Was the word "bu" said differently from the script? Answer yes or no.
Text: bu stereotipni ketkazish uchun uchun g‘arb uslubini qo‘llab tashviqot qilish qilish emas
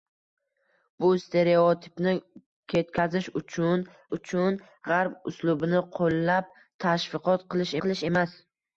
no